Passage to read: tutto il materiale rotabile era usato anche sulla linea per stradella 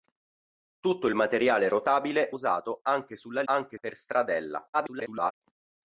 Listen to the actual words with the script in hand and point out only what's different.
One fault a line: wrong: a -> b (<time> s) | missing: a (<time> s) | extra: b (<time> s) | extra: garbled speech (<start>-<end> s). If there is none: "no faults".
missing: era (2.3 s)
wrong: linea -> anche (3.4 s)
extra: garbled speech (4.7-5.3 s)